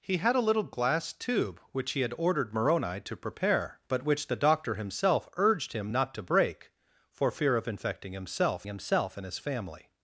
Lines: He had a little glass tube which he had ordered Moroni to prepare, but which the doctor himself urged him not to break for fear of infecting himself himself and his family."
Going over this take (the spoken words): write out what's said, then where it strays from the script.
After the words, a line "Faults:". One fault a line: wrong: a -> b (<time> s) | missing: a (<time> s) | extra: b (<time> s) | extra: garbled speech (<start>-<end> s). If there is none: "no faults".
He had a little glass tube which he had ordered Moroni to prepare, but which the doctor himself urged him not to break for fear of infecting himself himself and his family."
Faults:
no faults